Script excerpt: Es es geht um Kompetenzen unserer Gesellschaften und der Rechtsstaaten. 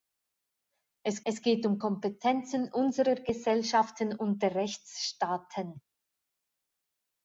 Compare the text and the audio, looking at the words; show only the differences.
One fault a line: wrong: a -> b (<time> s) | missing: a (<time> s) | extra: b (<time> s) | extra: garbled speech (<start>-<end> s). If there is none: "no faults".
no faults